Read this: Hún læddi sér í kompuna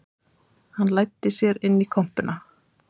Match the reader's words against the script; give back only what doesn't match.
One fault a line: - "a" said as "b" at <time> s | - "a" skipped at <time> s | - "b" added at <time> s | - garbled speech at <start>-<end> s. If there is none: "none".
- "Hún" said as "Hann" at 0.8 s
- "inn" added at 1.7 s